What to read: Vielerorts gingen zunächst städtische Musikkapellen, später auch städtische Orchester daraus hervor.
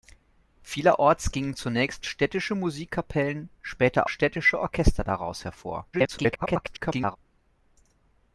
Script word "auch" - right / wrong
wrong